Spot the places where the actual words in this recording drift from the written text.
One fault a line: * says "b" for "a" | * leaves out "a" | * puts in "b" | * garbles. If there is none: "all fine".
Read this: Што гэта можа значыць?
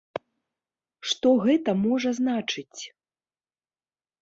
all fine